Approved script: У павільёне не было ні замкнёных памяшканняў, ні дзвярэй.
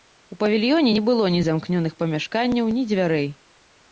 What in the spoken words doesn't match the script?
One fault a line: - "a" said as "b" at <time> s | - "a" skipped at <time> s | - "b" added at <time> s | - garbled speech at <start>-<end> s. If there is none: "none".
none